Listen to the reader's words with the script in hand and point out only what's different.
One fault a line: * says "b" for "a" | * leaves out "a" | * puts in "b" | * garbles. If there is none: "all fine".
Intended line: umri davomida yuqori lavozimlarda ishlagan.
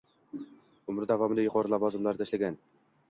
all fine